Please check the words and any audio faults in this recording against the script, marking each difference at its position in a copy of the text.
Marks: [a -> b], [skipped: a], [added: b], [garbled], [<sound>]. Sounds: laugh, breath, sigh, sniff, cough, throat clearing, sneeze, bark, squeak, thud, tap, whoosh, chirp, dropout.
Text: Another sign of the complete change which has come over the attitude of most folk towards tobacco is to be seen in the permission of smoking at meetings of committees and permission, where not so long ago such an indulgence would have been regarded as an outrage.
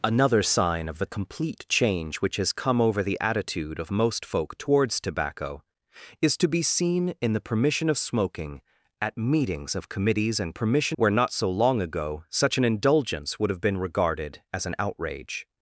Another sign of the complete change which has come over the attitude of most folk towards tobacco is to be seen in the permission of smoking at meetings of committees and permission, where not so long ago such an indulgence would have been regarded as an outrage.